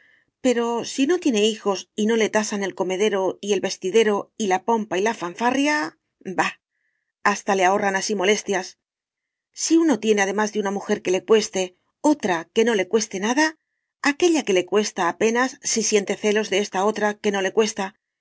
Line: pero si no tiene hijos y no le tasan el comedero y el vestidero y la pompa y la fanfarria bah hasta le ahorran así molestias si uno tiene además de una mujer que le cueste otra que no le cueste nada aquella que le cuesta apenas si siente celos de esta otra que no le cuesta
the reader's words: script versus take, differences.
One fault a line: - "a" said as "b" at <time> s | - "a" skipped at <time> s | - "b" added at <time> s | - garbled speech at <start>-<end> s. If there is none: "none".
none